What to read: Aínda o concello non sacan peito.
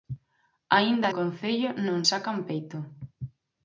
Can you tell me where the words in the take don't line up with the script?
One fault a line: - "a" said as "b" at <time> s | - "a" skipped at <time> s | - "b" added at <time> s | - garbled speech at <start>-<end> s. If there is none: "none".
none